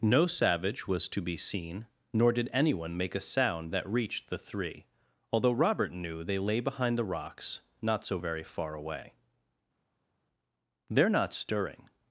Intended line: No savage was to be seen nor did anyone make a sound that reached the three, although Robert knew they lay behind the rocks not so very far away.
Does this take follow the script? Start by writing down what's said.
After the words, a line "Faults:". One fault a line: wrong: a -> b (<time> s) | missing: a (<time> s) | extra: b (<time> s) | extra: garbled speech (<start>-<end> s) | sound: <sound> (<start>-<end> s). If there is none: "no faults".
No savage was to be seen nor did anyone make a sound that reached the three, although Robert knew they lay behind the rocks not so very far away. "They're not stirring
Faults:
extra: They're not stirring (10.9 s)